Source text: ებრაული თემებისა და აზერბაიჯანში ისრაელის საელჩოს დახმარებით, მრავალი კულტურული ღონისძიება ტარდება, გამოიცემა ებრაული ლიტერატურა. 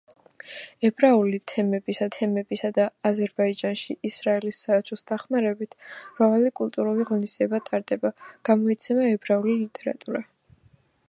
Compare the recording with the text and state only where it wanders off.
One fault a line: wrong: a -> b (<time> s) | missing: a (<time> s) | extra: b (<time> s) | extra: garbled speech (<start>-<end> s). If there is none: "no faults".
extra: თემებისა (2.2 s)